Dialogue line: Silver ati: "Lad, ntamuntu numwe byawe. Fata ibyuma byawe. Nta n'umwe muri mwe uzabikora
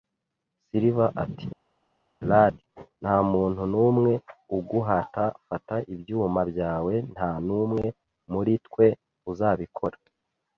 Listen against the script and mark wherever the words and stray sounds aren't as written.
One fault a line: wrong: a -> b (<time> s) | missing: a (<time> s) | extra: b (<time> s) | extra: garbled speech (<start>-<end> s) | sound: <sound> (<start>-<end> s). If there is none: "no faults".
wrong: byawe -> uguhata (4.6 s)
wrong: mwe -> twe (8.7 s)